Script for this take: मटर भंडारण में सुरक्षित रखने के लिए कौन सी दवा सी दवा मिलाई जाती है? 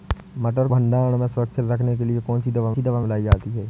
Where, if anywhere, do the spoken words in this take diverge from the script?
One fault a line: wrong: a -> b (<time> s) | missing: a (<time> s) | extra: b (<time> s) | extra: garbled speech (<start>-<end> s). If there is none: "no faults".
no faults